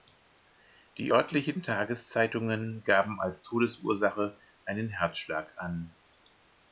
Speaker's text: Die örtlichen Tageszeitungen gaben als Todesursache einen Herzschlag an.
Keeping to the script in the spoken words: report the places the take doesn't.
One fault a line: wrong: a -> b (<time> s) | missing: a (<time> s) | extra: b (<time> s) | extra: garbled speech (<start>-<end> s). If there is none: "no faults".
no faults